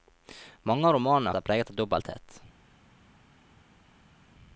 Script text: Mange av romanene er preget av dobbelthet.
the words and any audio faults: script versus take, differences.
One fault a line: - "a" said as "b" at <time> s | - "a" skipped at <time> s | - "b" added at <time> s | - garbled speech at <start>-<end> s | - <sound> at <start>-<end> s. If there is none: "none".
none